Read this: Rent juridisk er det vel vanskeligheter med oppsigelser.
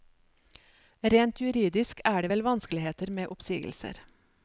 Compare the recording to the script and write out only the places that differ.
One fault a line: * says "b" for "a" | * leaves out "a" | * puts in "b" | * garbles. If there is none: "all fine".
all fine